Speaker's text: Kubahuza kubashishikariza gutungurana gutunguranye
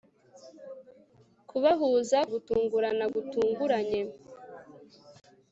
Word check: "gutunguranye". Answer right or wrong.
right